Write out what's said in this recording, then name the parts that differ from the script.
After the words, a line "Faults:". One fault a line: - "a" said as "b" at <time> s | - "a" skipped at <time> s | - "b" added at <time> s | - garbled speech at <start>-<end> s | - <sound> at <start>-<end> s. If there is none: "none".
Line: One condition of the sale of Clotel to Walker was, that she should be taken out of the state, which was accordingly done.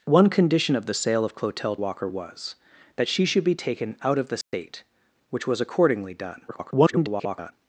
One condition of the sale of Clotel Walker was, that she should be taken out of the state, which was accordingly done. [garbled]
Faults:
- "to" skipped at 1.8 s
- dropout at 4.4-4.5 s
- garbled speech at 6.5-7.5 s